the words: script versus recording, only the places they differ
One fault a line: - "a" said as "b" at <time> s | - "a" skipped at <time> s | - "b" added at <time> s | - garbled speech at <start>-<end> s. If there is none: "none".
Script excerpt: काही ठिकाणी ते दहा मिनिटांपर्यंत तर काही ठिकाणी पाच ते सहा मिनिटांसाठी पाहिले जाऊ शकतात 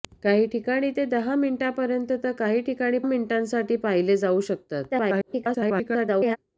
- "पाच ते सहा" skipped at 3.0 s
- garbled speech at 4.9-6.4 s